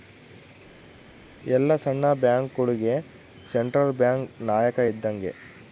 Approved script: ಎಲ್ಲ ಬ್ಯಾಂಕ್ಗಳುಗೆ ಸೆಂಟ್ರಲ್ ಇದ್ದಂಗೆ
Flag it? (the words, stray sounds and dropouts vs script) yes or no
yes